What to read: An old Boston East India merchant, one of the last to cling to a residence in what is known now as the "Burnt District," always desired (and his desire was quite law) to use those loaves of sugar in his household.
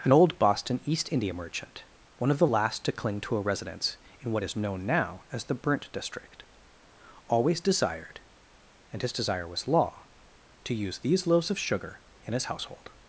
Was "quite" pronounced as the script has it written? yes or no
no